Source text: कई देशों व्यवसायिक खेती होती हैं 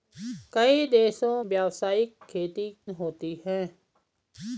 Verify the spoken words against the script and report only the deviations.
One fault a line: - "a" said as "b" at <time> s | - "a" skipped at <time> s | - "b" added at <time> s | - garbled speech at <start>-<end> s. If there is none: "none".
none